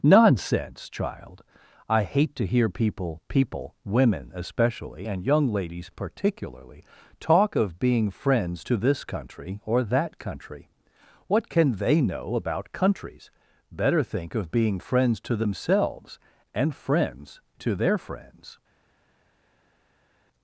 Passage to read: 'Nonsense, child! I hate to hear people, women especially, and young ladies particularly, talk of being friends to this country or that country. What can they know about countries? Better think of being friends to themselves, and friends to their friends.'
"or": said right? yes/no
yes